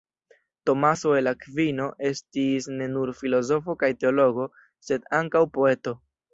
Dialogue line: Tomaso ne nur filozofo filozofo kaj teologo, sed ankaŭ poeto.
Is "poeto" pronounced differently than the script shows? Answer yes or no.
no